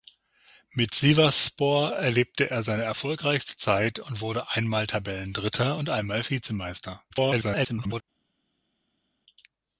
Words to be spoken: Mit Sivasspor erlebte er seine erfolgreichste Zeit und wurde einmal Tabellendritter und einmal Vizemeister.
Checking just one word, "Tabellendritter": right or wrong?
right